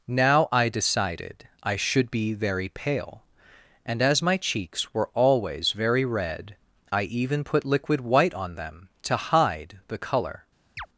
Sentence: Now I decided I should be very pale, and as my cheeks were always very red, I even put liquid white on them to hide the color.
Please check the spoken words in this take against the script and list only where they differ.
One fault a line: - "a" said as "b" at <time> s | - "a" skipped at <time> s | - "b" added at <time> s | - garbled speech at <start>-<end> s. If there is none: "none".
none